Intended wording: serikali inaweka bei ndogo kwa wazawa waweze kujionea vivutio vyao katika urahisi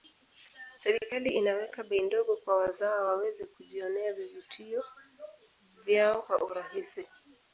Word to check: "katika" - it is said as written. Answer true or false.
false